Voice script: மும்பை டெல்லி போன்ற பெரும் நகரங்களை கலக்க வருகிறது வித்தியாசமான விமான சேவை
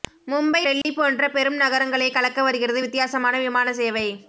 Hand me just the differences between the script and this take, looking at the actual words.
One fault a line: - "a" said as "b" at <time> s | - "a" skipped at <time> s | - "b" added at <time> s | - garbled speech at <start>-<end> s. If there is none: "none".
none